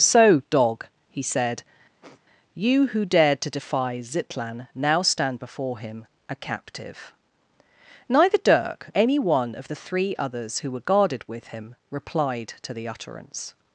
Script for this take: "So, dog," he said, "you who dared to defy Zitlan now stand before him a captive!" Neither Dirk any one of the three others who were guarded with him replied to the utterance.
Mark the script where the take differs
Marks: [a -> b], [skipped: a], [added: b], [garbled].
"So, dog," he said, "you who dared to defy Zitlan now stand before him a captive!" Neither Dirk any one of the three others who were guarded with him replied to the utterance.